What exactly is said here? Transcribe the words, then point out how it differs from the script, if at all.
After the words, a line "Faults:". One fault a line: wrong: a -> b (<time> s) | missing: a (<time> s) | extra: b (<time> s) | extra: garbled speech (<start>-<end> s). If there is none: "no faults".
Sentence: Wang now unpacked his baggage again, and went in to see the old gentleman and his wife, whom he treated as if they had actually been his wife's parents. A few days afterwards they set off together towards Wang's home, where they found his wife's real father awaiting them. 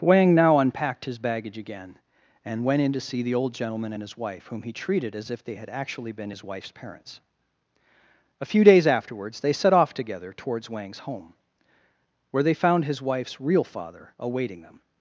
Wang now unpacked his baggage again, and went in to see the old gentleman and his wife, whom he treated as if they had actually been his wife's parents. A few days afterwards they set off together towards Wang's home, where they found his wife's real father awaiting them.
Faults:
no faults